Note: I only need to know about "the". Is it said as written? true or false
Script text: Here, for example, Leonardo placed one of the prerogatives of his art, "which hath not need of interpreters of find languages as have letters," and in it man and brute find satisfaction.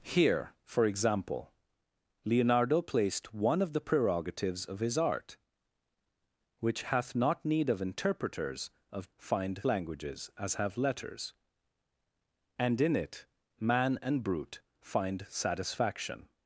true